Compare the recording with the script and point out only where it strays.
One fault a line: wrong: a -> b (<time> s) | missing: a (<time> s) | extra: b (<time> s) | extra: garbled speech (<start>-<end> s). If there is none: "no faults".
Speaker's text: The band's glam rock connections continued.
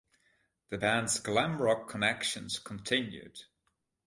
no faults